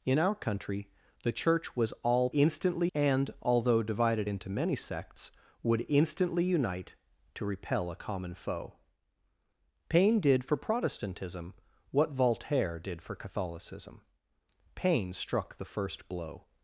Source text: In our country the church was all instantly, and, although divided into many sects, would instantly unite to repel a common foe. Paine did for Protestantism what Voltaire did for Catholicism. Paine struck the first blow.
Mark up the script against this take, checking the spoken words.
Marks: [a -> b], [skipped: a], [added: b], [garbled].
In our country the church was all instantly, and, although divided into many sects, would instantly unite to repel a common foe. Paine did for Protestantism what Voltaire did for Catholicism. Paine struck the first blow.